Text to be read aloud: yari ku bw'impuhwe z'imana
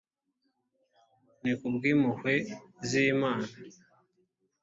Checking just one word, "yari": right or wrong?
wrong